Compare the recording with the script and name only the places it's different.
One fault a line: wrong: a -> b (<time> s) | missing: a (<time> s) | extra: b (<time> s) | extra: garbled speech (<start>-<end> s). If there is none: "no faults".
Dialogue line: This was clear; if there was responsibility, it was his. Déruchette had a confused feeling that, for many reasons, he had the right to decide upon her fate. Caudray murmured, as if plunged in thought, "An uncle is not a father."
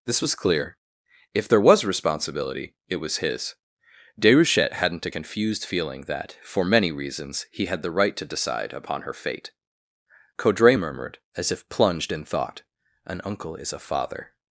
wrong: had -> hadn't (4.7 s)
missing: not (13.7 s)